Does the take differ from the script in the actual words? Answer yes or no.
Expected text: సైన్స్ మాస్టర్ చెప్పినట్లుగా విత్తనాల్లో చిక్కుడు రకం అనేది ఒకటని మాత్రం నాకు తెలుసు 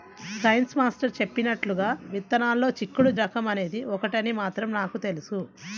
no